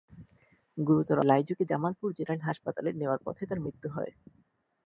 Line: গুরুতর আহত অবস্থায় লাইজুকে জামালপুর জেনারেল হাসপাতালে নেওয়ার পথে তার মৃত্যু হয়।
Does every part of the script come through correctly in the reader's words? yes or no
no